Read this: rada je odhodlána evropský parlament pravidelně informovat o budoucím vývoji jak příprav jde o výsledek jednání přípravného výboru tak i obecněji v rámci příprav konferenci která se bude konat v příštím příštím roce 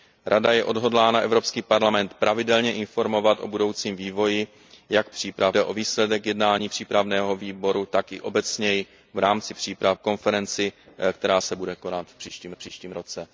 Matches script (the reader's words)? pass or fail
pass